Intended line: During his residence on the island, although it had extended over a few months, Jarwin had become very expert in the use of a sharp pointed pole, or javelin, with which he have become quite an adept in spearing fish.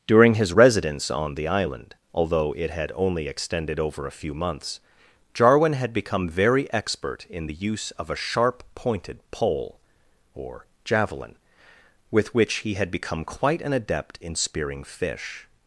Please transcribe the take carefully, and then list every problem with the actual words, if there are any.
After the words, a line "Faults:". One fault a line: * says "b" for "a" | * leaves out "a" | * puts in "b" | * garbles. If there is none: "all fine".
During his residence on the island, although it had only extended over a few months, Jarwin had become very expert in the use of a sharp pointed pole, or javelin, with which he had become quite an adept in spearing fish.
Faults:
* puts in "only"
* says "had" for "have"